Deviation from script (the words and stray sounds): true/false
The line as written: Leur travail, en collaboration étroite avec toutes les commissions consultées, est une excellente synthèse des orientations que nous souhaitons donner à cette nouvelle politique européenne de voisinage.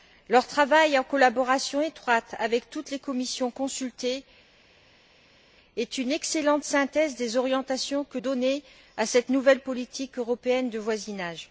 true